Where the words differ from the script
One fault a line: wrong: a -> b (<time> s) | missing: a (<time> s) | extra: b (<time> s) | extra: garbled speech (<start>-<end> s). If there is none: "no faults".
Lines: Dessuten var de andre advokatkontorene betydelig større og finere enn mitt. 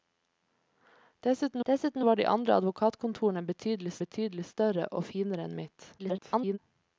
extra: dessuten (1.7 s)
extra: betydelig (4.0 s)
extra: garbled speech (6.0-6.6 s)